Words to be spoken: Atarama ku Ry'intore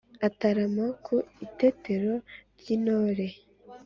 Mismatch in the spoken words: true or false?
true